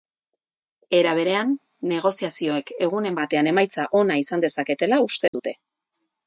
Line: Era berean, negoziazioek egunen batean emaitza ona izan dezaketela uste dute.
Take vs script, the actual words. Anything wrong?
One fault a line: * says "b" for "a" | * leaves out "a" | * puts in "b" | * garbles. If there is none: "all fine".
all fine